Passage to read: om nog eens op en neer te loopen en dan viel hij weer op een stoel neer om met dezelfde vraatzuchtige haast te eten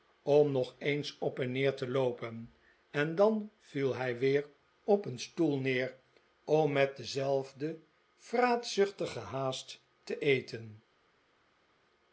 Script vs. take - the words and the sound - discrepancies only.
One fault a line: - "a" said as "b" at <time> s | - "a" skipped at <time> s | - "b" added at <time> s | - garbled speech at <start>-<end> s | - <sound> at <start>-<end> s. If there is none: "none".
none